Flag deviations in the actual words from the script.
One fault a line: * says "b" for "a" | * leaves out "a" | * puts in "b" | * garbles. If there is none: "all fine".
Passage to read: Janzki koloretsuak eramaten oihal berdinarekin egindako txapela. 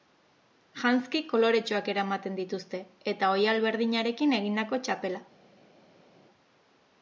* puts in "dituzte eta"